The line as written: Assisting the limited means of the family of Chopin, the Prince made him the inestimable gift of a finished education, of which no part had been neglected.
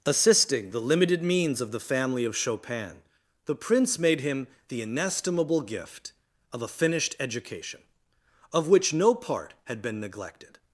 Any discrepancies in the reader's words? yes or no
no